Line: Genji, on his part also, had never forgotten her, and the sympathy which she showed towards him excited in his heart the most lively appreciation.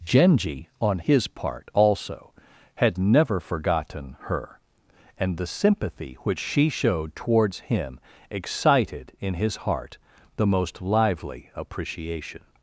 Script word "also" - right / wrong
right